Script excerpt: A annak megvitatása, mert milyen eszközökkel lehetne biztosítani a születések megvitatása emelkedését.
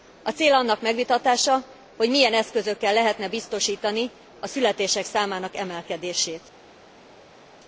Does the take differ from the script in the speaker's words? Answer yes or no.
yes